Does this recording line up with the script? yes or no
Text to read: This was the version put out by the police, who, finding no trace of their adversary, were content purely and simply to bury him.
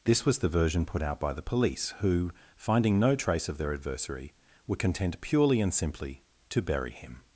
yes